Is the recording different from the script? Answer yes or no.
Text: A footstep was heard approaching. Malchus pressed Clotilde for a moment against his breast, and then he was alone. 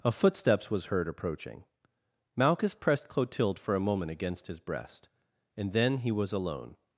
yes